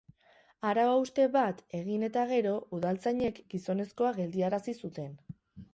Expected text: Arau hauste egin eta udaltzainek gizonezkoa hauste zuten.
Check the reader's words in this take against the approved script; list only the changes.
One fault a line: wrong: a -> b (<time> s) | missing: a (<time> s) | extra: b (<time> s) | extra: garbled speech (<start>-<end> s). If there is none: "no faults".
extra: bat (1.4 s)
extra: gero (2.3 s)
wrong: hauste -> geldiarazi (4.2 s)